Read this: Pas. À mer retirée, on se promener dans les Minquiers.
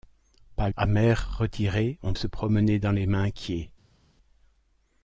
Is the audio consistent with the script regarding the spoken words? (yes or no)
yes